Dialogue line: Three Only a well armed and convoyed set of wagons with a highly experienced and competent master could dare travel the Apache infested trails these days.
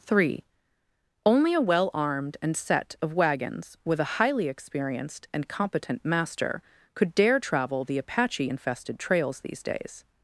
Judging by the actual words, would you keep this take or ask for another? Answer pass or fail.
fail